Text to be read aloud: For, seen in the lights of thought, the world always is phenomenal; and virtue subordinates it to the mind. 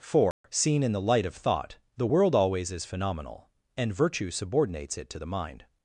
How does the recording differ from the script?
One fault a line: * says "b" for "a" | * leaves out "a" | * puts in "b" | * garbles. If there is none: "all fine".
* says "light" for "lights"